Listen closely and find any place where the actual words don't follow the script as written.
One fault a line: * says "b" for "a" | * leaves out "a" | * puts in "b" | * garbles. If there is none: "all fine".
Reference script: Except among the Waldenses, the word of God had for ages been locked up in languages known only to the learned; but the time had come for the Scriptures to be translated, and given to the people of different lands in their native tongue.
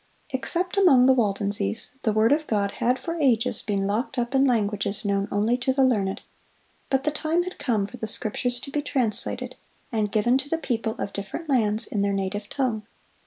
all fine